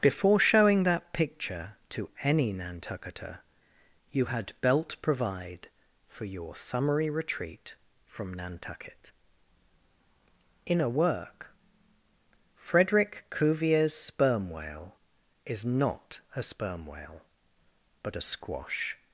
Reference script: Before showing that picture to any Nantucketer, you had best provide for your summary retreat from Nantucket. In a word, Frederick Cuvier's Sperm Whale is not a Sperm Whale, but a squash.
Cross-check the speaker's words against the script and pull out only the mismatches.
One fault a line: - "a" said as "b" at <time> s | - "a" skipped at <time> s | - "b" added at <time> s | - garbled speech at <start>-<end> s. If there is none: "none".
- "best" said as "belt" at 4.6 s
- "word" said as "work" at 10.9 s